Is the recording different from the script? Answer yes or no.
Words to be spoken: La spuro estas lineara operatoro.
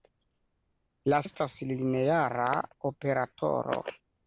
yes